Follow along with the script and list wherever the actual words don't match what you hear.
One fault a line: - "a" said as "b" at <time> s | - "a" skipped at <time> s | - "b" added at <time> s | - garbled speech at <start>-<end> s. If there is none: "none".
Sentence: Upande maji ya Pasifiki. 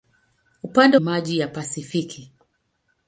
none